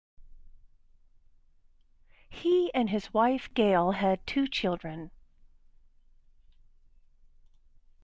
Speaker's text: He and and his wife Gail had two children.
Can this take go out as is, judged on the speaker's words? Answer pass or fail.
fail